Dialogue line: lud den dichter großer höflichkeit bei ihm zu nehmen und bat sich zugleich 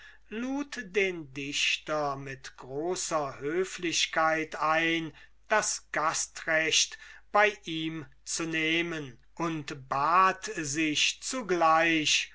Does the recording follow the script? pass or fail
fail